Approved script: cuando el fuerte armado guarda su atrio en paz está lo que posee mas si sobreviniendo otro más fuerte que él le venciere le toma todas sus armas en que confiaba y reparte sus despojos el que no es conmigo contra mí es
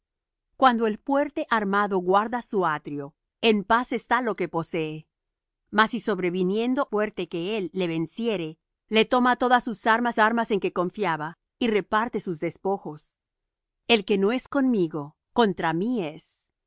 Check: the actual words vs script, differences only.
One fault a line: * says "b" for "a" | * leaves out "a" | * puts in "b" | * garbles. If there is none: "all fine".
* leaves out "otro más"
* puts in "armas"